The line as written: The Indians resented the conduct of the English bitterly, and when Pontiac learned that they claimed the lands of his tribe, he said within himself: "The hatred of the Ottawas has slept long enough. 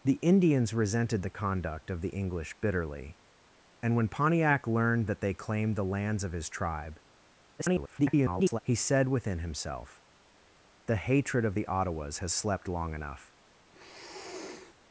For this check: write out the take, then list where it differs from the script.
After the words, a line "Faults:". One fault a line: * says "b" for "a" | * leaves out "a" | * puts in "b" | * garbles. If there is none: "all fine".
The Indians resented the conduct of the English bitterly, and when Pontiac learned that they claimed the lands of his tribe, [garbled] he said within himself: "The hatred of the Ottawas has slept long enough.
Faults:
* garbles